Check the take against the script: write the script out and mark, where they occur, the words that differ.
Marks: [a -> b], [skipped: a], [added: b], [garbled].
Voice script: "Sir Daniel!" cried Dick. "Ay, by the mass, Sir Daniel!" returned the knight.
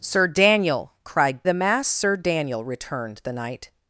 "Sir Daniel!" cried [skipped: Dick. "Ay, by] the mass, Sir Daniel!" returned the knight.